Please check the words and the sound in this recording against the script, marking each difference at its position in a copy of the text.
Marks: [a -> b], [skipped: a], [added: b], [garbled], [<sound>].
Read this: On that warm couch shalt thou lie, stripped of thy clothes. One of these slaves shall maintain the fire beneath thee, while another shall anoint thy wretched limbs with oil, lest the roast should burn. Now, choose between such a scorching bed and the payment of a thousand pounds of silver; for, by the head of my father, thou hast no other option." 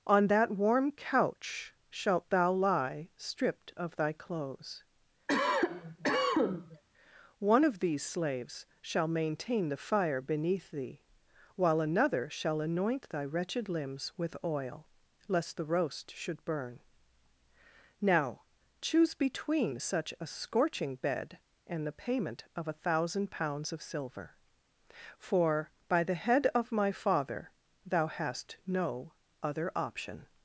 On that warm couch shalt thou lie, stripped of thy clothes. [cough] One of these slaves shall maintain the fire beneath thee, while another shall anoint thy wretched limbs with oil, lest the roast should burn. Now, choose between such a scorching bed and the payment of a thousand pounds of silver; for, by the head of my father, thou hast no other option."